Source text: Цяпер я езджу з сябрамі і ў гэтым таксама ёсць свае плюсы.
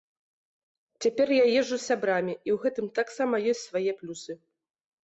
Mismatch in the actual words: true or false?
false